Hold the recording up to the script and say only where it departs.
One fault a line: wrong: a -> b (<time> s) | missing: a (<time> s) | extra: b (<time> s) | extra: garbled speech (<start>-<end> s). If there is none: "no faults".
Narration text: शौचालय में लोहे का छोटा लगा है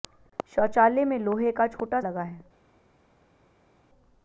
no faults